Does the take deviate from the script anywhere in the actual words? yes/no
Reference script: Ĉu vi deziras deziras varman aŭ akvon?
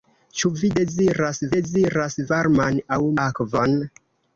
no